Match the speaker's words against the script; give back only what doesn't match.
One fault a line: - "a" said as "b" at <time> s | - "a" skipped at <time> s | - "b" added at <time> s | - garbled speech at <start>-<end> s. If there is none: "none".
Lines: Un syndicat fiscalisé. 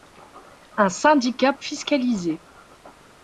none